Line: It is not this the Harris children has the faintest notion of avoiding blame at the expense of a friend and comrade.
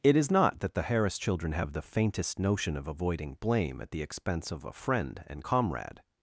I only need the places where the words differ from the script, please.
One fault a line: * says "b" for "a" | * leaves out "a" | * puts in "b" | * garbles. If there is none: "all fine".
* says "that" for "this"
* says "have" for "has"